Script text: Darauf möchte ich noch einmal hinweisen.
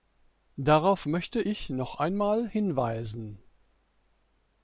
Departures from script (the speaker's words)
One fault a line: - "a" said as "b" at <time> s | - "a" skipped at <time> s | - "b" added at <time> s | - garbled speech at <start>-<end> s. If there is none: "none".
none